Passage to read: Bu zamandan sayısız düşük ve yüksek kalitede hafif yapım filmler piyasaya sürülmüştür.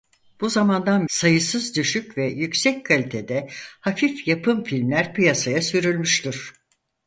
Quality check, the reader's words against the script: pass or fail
pass